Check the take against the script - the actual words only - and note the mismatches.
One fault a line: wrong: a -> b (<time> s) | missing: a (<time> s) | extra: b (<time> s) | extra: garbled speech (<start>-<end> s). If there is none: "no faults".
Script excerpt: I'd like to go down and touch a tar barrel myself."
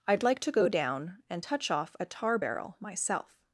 extra: off (1.7 s)